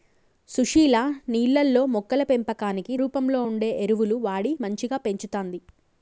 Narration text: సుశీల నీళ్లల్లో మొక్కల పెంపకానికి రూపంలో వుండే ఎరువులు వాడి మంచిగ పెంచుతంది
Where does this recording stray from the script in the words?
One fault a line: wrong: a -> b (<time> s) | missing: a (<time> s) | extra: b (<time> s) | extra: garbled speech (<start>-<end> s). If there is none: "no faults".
no faults